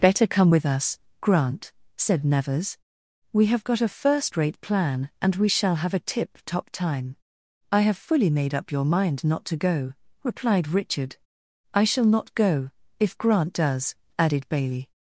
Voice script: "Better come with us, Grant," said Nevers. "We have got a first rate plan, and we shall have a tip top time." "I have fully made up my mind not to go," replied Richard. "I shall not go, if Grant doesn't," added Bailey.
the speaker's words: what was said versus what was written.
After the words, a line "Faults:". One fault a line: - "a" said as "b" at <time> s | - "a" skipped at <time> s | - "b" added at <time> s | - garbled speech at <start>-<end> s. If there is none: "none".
"Better come with us, Grant," said Nevers. "We have got a first rate plan, and we shall have a tip top time." "I have fully made up your mind not to go," replied Richard. "I shall not go, if Grant does," added Bailey.
Faults:
- "my" said as "your" at 8.7 s
- "doesn't" said as "does" at 13.5 s